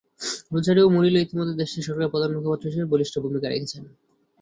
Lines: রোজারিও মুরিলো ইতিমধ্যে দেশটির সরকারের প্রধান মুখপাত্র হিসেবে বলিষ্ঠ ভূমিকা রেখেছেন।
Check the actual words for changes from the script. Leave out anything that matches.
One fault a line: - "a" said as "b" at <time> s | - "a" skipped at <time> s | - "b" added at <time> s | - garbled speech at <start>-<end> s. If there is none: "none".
none